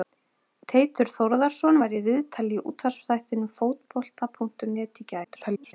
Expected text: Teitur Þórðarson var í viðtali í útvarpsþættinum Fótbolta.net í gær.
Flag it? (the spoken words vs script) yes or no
yes